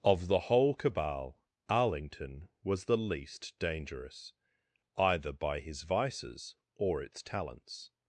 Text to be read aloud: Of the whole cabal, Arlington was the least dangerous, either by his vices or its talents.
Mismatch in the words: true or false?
false